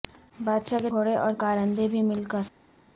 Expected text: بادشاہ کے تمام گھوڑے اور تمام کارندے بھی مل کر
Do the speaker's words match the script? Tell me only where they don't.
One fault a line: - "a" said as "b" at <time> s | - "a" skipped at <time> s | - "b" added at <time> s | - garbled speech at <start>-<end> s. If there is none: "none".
- "تمام" skipped at 0.9 s
- "تمام" skipped at 1.3 s